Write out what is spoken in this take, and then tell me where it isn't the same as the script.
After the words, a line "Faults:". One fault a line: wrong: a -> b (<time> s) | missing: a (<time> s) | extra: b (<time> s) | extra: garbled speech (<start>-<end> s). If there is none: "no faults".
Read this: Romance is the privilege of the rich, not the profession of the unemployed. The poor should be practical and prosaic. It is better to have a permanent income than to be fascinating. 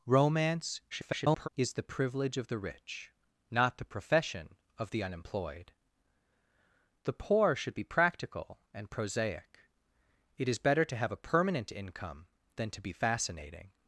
Romance [garbled] is the privilege of the rich, not the profession of the unemployed. The poor should be practical and prosaic. It is better to have a permanent income than to be fascinating.
Faults:
extra: garbled speech (0.9-1.5 s)